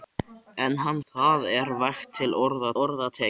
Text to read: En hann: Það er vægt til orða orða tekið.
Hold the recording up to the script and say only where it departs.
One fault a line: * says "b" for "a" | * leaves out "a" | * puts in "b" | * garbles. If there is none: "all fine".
all fine